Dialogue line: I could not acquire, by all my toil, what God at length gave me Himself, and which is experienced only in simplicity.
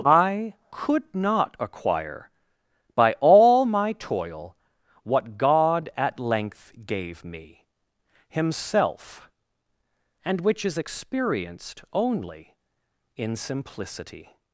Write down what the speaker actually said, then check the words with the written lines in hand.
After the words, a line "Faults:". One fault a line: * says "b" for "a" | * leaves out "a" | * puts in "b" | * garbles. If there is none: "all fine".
I could not acquire, by all my toil, what God at length gave me Himself, and which is experienced only in simplicity.
Faults:
all fine